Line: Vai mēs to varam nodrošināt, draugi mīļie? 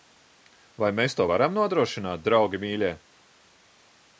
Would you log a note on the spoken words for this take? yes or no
no